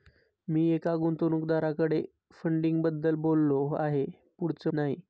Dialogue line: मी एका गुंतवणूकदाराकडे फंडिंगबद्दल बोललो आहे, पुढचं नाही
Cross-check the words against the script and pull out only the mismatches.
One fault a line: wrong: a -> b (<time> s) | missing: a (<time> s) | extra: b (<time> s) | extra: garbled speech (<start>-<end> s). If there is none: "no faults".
no faults